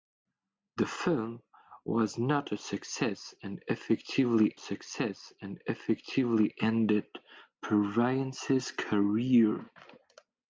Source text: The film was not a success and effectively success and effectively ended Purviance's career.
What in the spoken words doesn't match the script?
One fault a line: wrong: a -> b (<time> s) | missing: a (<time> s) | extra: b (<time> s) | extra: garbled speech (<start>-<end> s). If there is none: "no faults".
no faults